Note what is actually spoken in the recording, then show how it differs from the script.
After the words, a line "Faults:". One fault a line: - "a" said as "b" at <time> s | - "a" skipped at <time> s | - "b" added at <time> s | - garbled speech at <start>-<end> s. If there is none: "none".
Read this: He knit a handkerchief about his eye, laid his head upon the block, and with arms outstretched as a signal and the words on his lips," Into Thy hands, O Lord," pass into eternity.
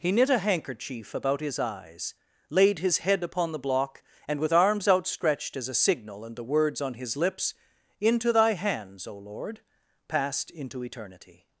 He knit a handkerchief about his eyes, laid his head upon the block, and with arms outstretched as a signal and the words on his lips," Into Thy hands, O Lord," passed into eternity.
Faults:
- "eye" said as "eyes" at 1.6 s
- "pass" said as "passed" at 10.1 s